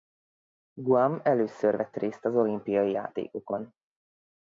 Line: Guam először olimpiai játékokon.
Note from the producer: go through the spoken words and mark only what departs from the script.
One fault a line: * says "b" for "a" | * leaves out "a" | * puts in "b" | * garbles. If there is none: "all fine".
* puts in "vett részt az"